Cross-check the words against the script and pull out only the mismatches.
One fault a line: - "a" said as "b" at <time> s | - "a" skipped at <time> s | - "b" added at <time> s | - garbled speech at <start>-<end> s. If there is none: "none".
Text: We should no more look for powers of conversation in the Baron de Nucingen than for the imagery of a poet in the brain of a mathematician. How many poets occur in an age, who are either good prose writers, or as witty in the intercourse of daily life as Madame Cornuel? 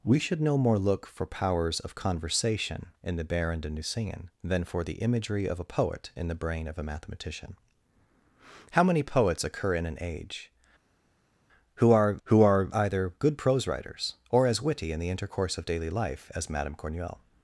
- "who are" added at 12.2 s